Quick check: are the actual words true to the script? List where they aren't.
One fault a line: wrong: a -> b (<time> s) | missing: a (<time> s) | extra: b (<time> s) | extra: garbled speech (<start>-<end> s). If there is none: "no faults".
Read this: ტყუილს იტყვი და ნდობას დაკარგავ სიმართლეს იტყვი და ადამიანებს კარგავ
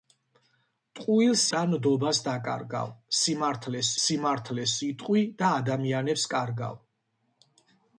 missing: იტყვი (1.4 s)
extra: სიმართლეს (4.0 s)